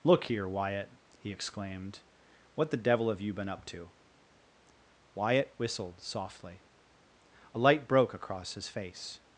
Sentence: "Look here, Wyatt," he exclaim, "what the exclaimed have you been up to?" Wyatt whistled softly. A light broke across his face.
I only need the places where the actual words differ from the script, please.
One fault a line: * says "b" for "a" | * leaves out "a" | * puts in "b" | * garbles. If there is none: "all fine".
* says "exclaimed" for "exclaim"
* says "devil" for "exclaimed"